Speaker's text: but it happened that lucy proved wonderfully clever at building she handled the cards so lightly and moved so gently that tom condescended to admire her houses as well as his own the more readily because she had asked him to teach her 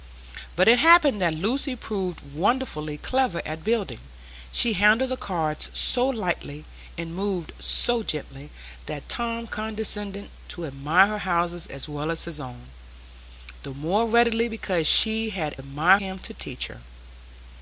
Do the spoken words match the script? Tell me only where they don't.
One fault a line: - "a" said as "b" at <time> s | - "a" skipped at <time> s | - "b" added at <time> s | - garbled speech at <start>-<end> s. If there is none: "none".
- "asked" said as "admire" at 15.6 s